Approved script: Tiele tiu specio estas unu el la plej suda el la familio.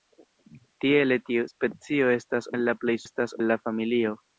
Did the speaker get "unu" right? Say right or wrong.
wrong